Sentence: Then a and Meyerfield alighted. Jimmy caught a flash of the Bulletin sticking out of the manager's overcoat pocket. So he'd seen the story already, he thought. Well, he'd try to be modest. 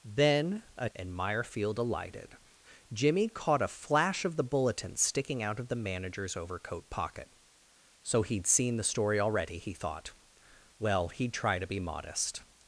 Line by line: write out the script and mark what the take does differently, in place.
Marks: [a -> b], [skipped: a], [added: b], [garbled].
Then a and Meyerfield alighted. Jimmy caught a flash of the Bulletin sticking out of the manager's overcoat pocket. So he'd seen the story already, he thought. Well, he'd try to be modest.